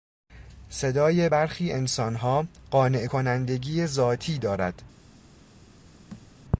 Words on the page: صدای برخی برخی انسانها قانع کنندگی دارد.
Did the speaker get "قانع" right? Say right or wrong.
right